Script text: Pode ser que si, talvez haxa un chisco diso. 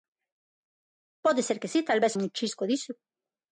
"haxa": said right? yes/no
no